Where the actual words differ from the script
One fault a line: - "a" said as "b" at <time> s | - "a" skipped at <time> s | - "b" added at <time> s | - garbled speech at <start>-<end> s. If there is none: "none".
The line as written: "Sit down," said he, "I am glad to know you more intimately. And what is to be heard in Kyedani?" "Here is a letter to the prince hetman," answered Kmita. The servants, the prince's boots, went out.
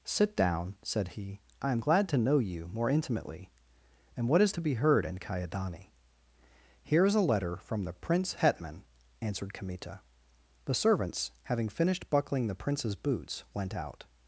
- "to" said as "from" at 7.6 s
- "having finished buckling" added at 11.4 s